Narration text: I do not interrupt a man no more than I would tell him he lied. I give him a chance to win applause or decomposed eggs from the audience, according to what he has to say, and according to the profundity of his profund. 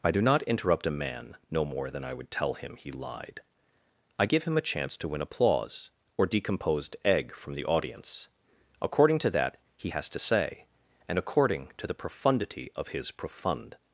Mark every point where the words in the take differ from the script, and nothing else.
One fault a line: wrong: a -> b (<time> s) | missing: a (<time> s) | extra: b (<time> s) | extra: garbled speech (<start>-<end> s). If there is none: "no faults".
wrong: eggs -> egg (7.0 s)
wrong: what -> that (9.3 s)